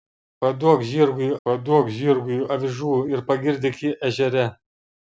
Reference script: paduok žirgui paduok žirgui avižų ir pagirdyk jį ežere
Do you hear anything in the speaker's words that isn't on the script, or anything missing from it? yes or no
no